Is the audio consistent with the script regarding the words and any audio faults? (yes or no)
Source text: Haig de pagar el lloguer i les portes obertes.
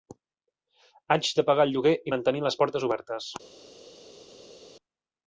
no